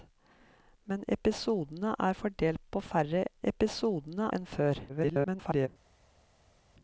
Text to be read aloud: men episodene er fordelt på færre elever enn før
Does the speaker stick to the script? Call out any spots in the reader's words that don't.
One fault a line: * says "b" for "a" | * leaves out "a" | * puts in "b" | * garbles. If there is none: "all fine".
* says "episodene" for "elever"
* garbles